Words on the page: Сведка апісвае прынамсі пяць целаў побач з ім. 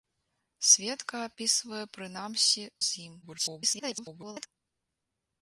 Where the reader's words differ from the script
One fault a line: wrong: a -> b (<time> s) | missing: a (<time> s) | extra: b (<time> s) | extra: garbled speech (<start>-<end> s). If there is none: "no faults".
missing: пяць целаў побач (2.6 s)
extra: garbled speech (3.2-4.5 s)